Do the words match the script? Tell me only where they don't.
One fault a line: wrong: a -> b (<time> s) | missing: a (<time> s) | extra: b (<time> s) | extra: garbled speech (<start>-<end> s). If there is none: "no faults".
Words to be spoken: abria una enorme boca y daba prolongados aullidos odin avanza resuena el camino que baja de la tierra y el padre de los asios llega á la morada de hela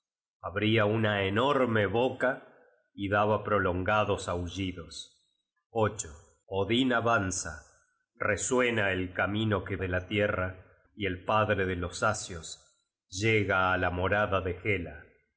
missing: baja (9.8 s)